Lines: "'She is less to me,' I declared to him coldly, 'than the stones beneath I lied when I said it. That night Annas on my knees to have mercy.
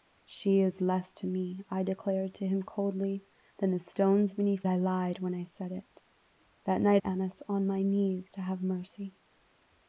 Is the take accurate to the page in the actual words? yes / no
yes